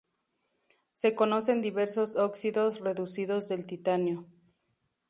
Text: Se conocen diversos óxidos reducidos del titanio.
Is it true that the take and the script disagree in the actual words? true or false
false